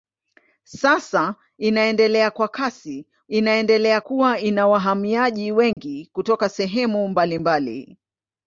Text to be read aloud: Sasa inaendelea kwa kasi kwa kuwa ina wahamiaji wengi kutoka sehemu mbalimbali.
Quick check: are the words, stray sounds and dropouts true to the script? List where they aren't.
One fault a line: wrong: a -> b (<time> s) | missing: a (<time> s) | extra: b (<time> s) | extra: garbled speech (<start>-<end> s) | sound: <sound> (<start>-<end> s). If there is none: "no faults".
wrong: kwa -> inaendelea (3.3 s)
sound: dropout (5.7-5.8 s)